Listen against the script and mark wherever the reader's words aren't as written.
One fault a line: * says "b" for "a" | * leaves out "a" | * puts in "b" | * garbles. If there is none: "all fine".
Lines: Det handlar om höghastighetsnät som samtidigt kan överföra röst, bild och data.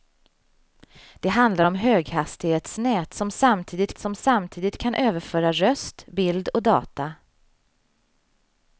* puts in "som samtidigt"